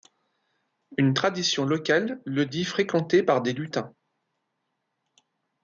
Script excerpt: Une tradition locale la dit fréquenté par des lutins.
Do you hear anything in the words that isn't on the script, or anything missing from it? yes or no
yes